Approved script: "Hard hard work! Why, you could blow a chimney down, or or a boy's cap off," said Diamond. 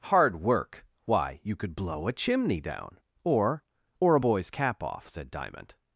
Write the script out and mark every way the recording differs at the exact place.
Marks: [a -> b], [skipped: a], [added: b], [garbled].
"Hard [skipped: hard] work! Why, you could blow a chimney down, or or a boy's cap off," said Diamond.